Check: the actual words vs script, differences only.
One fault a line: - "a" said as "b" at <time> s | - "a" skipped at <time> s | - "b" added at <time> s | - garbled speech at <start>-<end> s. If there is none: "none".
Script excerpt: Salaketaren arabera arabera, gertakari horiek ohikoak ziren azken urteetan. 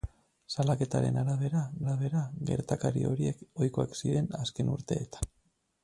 none